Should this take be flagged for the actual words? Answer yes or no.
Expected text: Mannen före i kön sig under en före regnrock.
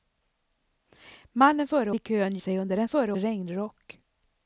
no